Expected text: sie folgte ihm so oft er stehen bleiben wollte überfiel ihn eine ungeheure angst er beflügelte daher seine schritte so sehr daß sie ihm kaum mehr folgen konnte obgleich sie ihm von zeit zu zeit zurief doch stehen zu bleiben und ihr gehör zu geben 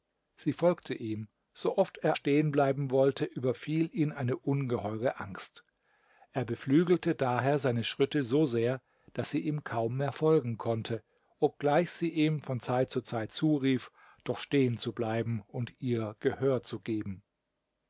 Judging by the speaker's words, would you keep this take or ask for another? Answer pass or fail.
pass